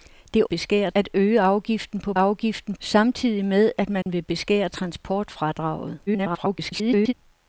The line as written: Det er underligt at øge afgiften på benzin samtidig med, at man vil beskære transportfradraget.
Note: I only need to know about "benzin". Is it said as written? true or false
false